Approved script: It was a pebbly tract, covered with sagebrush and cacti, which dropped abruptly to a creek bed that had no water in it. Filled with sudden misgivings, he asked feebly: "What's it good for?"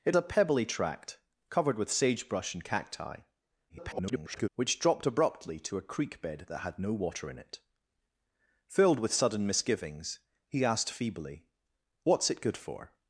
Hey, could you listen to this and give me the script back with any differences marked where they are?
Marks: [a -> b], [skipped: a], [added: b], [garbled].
It [skipped: was] a pebbly tract, covered with sagebrush and cacti, [garbled] which dropped abruptly to a creek bed that had no water in it. Filled with sudden misgivings, he asked feebly: "What's it good for?"